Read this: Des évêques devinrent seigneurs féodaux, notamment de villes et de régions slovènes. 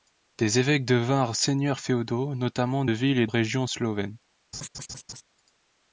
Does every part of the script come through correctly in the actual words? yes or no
no